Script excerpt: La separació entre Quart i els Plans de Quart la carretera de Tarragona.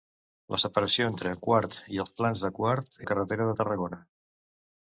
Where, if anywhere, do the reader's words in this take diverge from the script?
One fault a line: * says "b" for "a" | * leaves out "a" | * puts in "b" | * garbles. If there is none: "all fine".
all fine